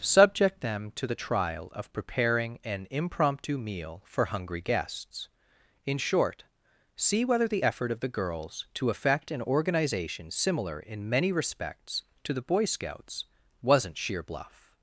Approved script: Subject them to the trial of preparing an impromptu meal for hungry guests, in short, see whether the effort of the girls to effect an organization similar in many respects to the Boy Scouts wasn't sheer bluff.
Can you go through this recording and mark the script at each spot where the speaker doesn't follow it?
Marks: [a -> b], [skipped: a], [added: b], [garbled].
Subject them to the trial of preparing an impromptu meal for hungry guests, in short, see whether the effort of the girls to effect an organization similar in many respects to the Boy Scouts wasn't sheer bluff.